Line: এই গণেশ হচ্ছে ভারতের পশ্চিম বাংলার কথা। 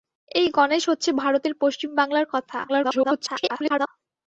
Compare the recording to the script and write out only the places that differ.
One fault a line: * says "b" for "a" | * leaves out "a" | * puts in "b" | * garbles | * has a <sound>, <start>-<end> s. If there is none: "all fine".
* garbles